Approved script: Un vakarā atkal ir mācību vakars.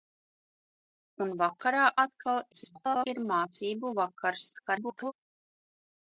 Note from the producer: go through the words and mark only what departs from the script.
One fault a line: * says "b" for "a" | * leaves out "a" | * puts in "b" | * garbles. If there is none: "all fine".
* garbles
* garbles